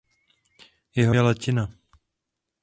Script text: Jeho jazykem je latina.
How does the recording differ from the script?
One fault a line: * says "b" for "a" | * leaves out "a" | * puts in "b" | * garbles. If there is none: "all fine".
* leaves out "jazykem"